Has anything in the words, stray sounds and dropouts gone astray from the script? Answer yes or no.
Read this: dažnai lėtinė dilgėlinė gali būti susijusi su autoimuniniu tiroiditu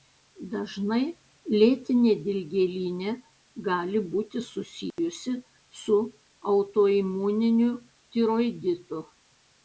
yes